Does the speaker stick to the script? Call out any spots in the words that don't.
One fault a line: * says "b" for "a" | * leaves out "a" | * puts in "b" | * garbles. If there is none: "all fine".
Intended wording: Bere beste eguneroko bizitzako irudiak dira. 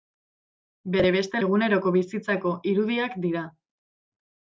all fine